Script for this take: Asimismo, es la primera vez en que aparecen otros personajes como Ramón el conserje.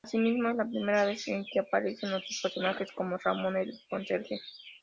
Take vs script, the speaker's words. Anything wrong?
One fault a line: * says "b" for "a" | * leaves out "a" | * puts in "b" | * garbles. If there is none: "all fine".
all fine